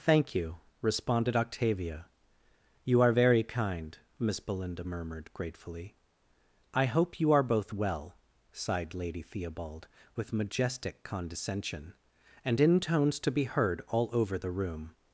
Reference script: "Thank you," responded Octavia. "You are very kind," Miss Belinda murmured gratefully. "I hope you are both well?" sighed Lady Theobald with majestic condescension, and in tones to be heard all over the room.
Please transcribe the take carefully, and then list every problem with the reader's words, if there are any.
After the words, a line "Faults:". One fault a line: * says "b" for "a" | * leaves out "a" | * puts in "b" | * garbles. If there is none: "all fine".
"Thank you," responded Octavia. "You are very kind," Miss Belinda murmured gratefully. "I hope you are both well?" sighed Lady Theobald with majestic condescension, and in tones to be heard all over the room.
Faults:
all fine